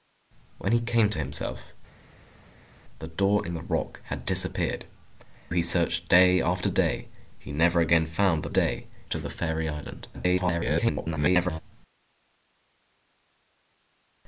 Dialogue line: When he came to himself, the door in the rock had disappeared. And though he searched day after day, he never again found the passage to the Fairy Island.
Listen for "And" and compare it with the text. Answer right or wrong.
wrong